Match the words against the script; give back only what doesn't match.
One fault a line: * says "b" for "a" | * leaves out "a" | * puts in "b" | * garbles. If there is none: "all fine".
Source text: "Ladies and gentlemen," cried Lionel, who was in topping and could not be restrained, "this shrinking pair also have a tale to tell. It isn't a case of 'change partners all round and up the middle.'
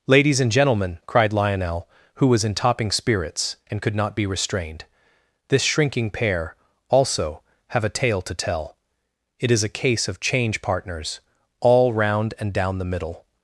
* puts in "spirits"
* says "is" for "isn't"
* says "down" for "up"